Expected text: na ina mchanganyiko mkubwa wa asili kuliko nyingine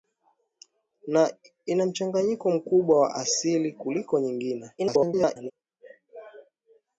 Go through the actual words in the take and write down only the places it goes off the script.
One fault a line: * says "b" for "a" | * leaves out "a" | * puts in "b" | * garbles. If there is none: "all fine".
* garbles